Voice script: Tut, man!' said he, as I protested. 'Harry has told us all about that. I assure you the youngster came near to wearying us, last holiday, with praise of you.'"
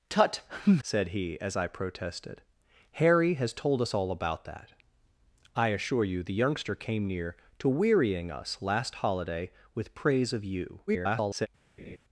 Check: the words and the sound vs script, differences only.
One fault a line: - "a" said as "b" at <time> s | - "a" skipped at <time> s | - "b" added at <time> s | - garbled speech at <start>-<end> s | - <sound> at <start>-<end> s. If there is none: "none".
- "man" skipped at 0.4 s
- garbled speech at 10.9-11.5 s
- laugh at 11.8-12.0 s